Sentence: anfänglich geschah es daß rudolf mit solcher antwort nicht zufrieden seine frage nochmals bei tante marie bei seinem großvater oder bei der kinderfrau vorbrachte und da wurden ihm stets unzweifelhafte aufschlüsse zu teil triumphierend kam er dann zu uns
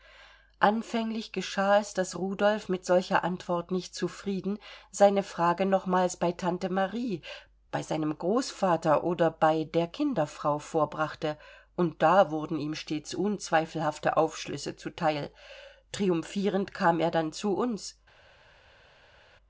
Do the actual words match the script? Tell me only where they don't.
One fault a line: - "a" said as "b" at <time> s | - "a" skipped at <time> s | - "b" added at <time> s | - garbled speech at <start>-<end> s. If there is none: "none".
none